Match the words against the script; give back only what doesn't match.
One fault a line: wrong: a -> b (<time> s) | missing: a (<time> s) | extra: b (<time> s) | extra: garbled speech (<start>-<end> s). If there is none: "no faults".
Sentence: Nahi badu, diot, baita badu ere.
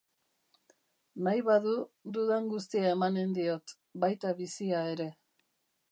extra: dudan guztia emanen (2.2 s)
wrong: badu -> bizia (4.4 s)